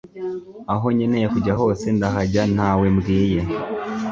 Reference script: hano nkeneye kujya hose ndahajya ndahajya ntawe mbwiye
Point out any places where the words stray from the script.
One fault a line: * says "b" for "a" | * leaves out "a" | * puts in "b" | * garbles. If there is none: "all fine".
* says "aho" for "hano"
* leaves out "ndahajya"